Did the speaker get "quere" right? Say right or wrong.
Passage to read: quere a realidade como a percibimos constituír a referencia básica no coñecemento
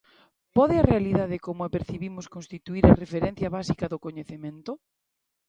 wrong